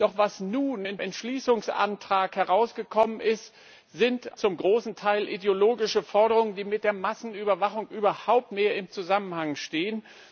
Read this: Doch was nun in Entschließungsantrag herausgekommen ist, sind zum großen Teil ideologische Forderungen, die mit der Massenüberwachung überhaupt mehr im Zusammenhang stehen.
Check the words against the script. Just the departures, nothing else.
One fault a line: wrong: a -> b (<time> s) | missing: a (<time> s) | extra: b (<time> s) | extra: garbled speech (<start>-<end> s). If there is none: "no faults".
no faults